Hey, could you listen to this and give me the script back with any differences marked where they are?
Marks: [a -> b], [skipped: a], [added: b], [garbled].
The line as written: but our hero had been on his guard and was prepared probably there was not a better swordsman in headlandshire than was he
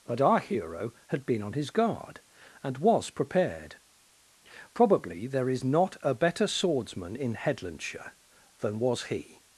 but our hero had been on his guard and was prepared probably there [was -> is] not a better swordsman in headlandshire than was he